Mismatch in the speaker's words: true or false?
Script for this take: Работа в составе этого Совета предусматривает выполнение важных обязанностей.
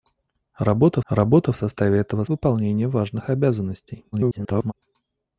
true